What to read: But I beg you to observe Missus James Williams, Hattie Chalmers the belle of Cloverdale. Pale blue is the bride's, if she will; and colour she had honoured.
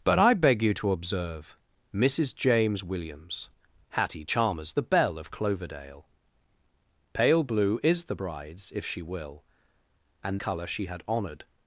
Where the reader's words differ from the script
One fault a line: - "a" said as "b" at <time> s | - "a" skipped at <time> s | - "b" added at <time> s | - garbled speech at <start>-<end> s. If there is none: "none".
none